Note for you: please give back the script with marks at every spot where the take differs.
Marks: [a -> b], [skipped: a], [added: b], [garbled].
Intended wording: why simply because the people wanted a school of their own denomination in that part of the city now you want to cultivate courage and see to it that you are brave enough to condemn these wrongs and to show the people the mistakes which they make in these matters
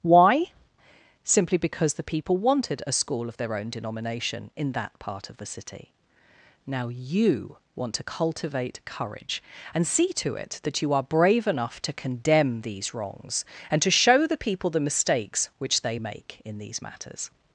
why simply because the people wanted a school of their own denomination in that part of the city now you want to cultivate courage and see to it that you are brave enough to condemn these wrongs and to show the people the mistakes which they make in these matters